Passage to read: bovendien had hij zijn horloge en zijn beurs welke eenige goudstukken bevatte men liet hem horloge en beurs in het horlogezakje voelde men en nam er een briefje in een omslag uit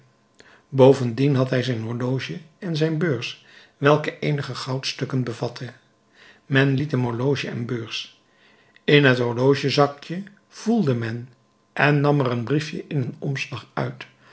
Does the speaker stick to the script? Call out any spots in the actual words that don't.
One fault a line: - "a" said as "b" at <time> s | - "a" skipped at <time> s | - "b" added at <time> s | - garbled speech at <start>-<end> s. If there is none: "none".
none